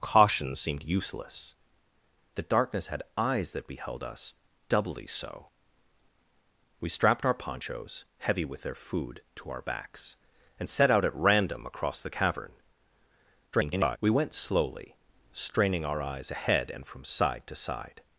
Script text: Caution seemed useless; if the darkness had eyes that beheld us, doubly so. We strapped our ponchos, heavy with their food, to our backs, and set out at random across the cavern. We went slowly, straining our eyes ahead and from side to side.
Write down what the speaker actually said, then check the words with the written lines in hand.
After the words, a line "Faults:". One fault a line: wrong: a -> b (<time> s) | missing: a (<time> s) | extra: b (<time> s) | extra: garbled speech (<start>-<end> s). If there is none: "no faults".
Caution seemed useless; the darkness had eyes that beheld us, doubly so. We strapped our ponchos, heavy with their food, to our backs, and set out at random across the cavern. [garbled] We went slowly, straining our eyes ahead and from side to side.
Faults:
missing: if (1.5 s)
extra: garbled speech (13.5-14.0 s)